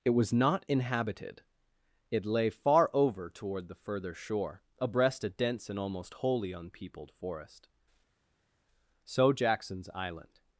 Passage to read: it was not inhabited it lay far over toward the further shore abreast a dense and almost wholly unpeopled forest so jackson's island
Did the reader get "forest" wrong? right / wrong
right